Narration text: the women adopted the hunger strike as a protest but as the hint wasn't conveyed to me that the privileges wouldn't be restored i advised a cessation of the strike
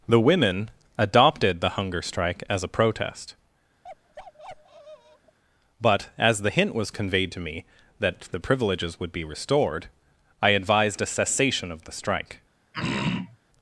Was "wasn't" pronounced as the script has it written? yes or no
no